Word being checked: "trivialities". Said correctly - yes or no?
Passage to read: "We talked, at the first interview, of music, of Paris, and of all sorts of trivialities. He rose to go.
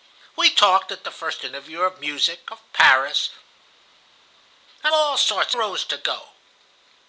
no